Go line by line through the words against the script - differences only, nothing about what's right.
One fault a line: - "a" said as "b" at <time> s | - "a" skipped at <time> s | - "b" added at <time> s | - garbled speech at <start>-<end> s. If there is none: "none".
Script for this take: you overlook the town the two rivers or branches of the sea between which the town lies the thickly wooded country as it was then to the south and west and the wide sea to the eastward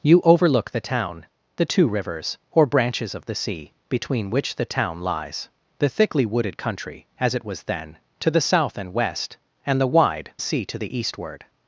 none